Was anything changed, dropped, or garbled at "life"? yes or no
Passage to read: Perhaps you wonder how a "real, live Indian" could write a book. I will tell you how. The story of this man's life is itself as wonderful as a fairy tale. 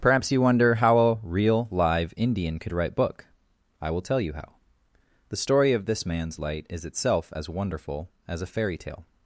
yes